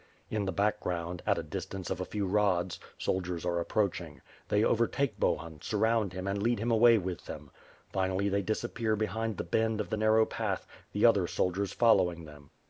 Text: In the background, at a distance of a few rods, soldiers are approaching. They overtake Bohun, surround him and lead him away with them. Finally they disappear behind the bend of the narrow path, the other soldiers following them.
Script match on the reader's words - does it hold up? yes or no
yes